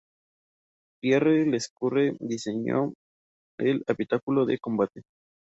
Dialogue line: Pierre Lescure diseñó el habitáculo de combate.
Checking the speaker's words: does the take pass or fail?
pass